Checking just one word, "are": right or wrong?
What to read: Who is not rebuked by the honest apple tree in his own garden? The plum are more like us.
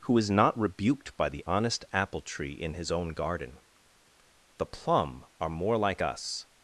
right